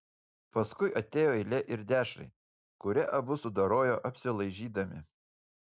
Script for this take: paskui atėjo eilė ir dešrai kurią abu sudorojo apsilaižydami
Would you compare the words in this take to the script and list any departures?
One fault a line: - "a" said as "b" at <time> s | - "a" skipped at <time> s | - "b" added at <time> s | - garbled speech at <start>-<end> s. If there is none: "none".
none